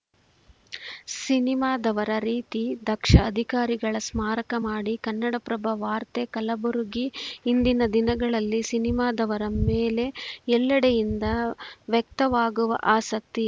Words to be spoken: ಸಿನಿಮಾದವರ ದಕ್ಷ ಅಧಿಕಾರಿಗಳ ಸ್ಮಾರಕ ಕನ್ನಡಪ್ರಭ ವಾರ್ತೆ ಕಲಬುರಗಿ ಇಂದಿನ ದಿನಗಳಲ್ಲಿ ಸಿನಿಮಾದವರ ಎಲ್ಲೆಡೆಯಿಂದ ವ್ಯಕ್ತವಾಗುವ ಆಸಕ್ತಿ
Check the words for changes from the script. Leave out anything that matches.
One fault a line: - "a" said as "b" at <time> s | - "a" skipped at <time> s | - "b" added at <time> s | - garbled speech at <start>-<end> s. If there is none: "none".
- "ರೀತಿ" added at 2.2 s
- "ಮಾಡಿ" added at 4.6 s
- "ಮೇಲೆ" added at 9.6 s